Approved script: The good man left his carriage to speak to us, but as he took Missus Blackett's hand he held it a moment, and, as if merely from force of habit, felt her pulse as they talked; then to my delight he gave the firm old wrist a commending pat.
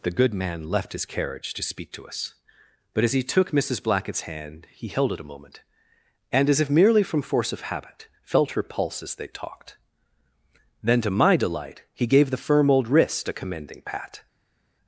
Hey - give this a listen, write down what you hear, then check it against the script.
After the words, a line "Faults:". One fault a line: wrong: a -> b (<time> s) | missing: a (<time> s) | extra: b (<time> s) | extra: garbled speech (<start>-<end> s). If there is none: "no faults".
The good man left his carriage to speak to us, but as he took Missus Blackett's hand he held it a moment, and, as if merely from force of habit, felt her pulse as they talked; then to my delight he gave the firm old wrist a commending pat.
Faults:
no faults